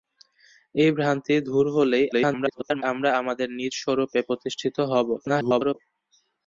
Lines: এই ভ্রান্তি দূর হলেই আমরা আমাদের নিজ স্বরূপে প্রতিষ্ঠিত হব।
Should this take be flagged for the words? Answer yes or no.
yes